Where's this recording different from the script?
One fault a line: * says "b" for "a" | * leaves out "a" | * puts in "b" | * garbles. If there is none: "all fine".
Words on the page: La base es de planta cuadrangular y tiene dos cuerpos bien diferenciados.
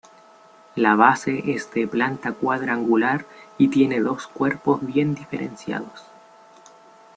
all fine